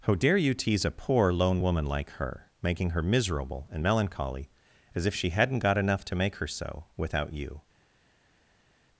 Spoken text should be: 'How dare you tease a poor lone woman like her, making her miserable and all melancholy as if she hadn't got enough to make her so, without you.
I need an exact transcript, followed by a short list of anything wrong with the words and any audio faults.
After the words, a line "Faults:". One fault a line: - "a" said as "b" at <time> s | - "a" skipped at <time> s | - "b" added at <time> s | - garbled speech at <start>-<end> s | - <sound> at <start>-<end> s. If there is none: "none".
'How dare you tease a poor lone woman like her, making her miserable and melancholy as if she hadn't got enough to make her so, without you.
Faults:
- "all" skipped at 3.8 s